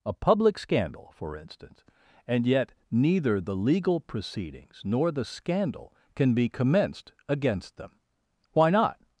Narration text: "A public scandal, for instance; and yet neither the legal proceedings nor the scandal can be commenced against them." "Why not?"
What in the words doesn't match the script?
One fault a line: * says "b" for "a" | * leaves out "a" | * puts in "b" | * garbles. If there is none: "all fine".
all fine